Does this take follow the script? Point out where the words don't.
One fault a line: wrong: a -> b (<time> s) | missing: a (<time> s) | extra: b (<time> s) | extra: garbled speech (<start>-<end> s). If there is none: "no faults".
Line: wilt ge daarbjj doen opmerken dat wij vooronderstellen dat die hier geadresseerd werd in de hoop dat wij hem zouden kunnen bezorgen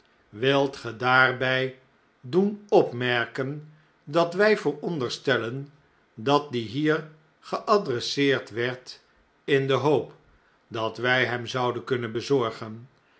no faults